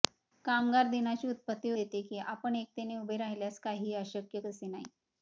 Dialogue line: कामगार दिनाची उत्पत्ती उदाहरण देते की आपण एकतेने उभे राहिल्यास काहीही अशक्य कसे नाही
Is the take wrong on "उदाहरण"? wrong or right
wrong